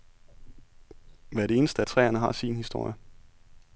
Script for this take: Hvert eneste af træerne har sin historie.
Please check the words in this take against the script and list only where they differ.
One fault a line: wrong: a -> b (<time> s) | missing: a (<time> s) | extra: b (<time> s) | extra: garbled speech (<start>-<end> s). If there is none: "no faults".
no faults